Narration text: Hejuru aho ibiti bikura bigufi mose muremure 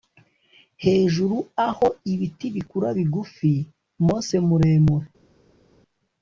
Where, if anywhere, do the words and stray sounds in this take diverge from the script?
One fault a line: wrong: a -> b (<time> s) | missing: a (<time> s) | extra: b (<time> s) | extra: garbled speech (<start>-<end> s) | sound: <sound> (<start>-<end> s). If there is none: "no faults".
no faults